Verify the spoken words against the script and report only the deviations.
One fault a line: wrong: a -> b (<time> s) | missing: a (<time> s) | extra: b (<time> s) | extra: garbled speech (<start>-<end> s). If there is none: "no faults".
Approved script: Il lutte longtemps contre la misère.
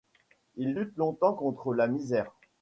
no faults